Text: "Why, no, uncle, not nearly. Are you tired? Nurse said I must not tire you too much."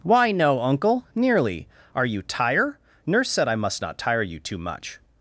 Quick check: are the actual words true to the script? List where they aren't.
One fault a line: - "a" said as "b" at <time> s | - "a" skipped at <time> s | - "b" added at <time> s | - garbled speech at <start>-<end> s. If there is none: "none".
- "not" skipped at 1.1 s
- "tired" said as "tire" at 2.2 s